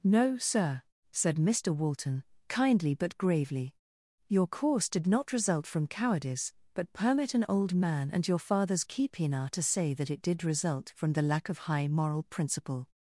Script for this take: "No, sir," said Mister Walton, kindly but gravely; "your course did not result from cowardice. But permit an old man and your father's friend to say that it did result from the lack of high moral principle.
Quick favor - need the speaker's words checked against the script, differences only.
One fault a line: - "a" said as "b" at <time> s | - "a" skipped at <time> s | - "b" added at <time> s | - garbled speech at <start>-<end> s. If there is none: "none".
- "friend" said as "keepina" at 8.8 s